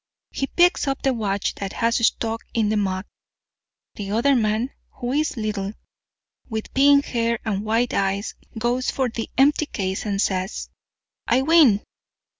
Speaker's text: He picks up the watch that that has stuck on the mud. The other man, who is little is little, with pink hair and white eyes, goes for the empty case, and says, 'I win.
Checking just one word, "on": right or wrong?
wrong